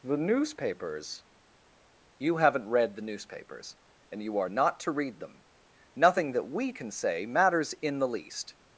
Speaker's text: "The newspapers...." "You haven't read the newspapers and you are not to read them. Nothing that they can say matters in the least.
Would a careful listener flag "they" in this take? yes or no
yes